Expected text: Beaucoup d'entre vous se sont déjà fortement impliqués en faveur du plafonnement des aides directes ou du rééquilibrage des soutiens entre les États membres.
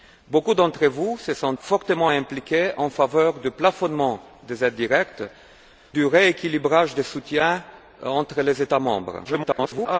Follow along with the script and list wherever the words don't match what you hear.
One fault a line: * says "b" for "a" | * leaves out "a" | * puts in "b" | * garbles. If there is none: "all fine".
* leaves out "déjà"
* leaves out "ou"
* garbles